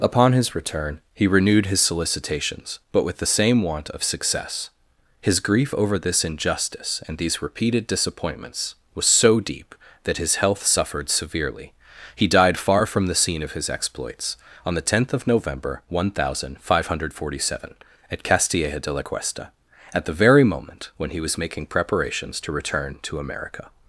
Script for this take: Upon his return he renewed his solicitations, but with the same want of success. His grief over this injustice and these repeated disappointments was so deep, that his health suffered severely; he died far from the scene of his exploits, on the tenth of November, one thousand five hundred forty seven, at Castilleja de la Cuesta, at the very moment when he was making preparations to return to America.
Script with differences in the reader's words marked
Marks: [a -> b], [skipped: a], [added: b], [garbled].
Upon his return he renewed his solicitations, but with the same want of success. His grief over this injustice and these repeated disappointments was so deep, that his health suffered severely; he died far from the scene of his exploits, on the tenth of November, one thousand five hundred forty seven, at Castilleja de la Cuesta, at the very moment when he was making preparations to return to America.